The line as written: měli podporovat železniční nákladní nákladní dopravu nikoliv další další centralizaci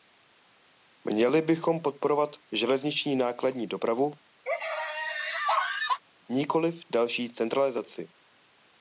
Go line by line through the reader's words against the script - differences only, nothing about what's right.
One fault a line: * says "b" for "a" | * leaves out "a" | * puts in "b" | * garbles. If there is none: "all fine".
* puts in "bychom"
* leaves out "nákladní"
* leaves out "další"